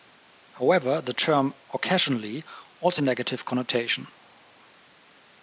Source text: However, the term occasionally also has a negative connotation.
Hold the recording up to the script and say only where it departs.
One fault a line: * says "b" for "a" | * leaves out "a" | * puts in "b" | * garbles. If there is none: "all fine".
* leaves out "has"